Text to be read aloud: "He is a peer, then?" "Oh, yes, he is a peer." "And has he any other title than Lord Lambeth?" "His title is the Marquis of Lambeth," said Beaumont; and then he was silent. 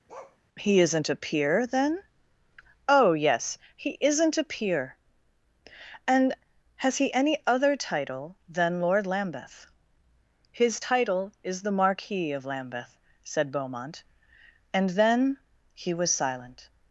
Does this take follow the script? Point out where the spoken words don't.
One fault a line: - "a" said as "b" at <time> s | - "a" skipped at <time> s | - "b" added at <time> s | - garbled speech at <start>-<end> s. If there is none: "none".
- "is" said as "isn't" at 0.8 s
- "is" said as "isn't" at 4.0 s